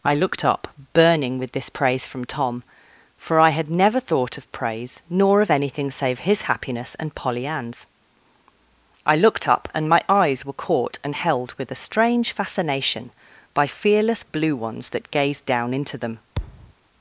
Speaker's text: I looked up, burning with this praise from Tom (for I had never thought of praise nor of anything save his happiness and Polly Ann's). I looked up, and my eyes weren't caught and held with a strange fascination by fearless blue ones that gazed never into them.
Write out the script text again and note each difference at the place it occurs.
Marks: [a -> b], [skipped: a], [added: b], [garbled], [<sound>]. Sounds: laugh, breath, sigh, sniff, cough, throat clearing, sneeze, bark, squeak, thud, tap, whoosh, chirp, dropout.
I looked up, burning with this praise from Tom (for I had never thought of praise nor of anything save his happiness and Polly Ann's). I looked up, and my eyes [weren't -> were] caught and held with a strange fascination by fearless blue ones that gazed [never -> down] into them. [thud]